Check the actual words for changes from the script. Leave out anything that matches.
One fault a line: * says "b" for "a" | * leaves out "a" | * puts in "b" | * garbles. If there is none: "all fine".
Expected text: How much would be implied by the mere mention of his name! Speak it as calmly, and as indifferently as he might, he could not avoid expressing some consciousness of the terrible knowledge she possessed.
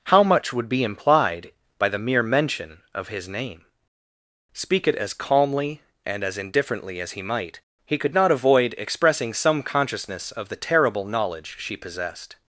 all fine